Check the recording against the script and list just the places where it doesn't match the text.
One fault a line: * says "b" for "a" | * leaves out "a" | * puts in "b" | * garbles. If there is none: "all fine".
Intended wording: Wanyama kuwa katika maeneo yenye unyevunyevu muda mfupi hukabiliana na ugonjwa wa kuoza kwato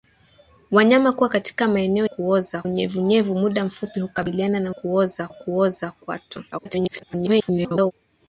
* says "kuoza" for "yenye"
* says "kuoza" for "ugonjwa"
* garbles